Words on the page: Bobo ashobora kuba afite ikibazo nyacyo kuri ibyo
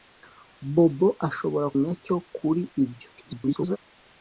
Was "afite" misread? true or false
true